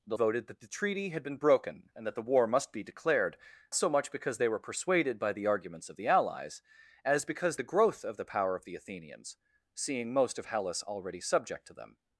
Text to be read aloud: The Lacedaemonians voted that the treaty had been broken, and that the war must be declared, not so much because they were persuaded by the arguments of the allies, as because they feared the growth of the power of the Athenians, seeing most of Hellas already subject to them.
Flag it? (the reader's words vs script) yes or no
yes